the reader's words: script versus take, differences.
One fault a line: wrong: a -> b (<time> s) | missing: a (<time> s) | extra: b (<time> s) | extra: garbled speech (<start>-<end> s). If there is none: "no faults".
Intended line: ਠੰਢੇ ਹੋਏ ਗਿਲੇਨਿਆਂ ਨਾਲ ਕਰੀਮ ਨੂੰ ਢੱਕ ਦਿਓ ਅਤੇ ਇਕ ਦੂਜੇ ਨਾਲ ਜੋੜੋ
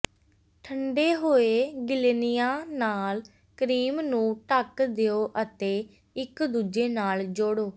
no faults